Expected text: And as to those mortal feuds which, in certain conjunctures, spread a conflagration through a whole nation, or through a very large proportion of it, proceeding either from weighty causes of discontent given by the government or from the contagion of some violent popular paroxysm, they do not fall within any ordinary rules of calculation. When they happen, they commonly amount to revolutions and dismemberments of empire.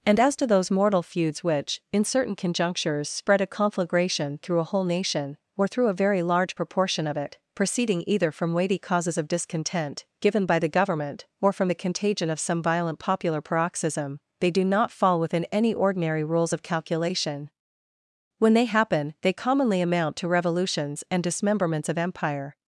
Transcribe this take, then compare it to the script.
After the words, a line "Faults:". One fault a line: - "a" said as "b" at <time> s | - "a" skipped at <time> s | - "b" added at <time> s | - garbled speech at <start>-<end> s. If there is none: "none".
And as to those mortal feuds which, in certain conjunctures, spread a conflagration through a whole nation, or through a very large proportion of it, proceeding either from weighty causes of discontent given by the government or from the contagion of some violent popular paroxysm, they do not fall within any ordinary rules of calculation. When they happen, they commonly amount to revolutions and dismemberments of empire.
Faults:
none